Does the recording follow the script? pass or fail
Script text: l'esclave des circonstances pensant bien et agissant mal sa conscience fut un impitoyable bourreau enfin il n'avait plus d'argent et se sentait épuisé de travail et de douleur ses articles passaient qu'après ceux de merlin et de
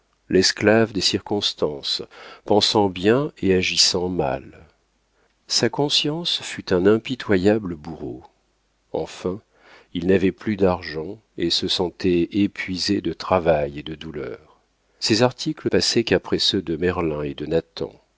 pass